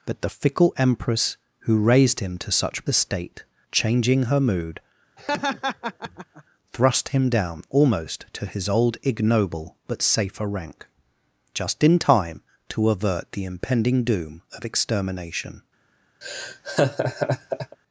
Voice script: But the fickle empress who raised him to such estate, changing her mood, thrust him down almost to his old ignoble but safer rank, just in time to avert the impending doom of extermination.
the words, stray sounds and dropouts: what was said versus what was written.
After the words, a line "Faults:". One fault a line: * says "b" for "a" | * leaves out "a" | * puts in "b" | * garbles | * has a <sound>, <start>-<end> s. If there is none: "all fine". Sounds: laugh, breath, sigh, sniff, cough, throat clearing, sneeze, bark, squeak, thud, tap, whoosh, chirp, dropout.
But the fickle empress who raised him to such estate, changing her mood, thrust him down almost to his old ignoble but safer rank, just in time to avert the impending doom of extermination.
Faults:
* has a laugh, 5.2-6.4 s
* has a laugh, 16.2-17.8 s